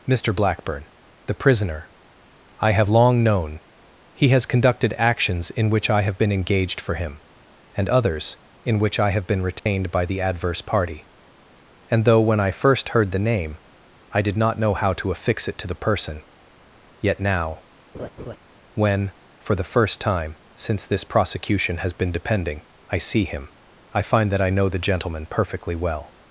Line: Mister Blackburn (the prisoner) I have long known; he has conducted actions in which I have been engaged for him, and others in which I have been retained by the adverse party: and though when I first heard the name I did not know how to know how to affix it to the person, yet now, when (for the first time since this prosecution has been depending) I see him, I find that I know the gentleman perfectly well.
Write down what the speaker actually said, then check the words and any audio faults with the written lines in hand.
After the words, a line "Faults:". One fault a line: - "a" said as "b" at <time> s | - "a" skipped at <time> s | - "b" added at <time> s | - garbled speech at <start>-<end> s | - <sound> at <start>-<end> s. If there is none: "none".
Mister Blackburn (the prisoner) I have long known; he has conducted actions in which I have been engaged for him, and others in which I have been retained by the adverse party: and though when I first heard the name I did not know how to affix it to the person, yet now, when (for the first time since this prosecution has been depending) I see him, I find that I know the gentleman perfectly well.
Faults:
- dropout at 9.6-9.7 s
- "know how to" skipped at 15.1 s
- laugh at 17.9-18.4 s